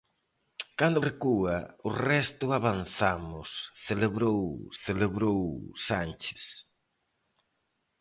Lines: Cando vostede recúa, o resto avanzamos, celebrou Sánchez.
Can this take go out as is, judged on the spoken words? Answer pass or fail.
fail